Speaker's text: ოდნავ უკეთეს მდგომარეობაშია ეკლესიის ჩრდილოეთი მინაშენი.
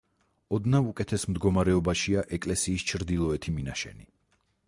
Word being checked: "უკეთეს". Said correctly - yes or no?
yes